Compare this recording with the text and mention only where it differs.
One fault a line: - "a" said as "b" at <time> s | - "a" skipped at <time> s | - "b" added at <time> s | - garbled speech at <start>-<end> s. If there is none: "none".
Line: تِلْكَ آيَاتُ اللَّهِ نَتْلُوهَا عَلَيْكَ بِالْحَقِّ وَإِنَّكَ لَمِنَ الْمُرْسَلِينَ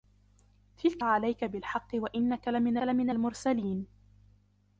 - "آيَاتُ اللَّهِ نَتْلُوهَا" skipped at 1.0 s
- "لَمِنَ" added at 2.8 s